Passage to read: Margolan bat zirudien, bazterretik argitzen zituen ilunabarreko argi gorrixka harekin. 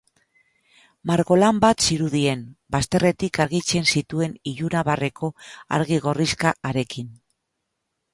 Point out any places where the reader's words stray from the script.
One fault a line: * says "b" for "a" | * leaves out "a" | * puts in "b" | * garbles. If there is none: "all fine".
all fine